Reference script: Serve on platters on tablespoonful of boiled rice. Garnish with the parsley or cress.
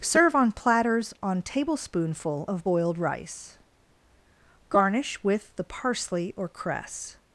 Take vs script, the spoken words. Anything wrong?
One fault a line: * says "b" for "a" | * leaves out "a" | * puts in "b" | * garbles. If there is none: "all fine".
all fine